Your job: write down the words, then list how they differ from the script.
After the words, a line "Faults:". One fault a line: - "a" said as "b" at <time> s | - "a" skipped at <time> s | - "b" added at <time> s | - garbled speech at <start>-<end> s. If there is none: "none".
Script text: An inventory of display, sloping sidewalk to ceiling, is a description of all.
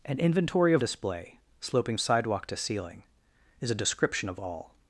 An inventory of display, sloping sidewalk to ceiling, is a description of all.
Faults:
none